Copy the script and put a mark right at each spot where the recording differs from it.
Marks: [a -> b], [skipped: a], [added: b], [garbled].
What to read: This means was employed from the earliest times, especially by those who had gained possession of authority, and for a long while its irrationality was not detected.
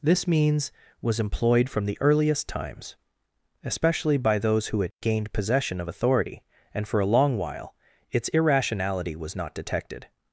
This means was employed from the earliest times, especially by those who had gained possession of authority, and for a long while its irrationality was not detected.